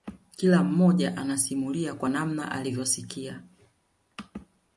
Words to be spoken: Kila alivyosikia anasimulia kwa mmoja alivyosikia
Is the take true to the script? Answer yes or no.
no